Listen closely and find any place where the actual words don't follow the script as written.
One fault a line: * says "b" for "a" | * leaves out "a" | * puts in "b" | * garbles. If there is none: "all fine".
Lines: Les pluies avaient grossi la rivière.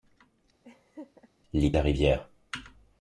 * leaves out "pluies avaient grossi"